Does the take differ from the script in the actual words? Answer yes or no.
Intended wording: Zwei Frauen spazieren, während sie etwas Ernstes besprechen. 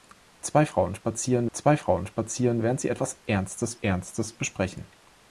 yes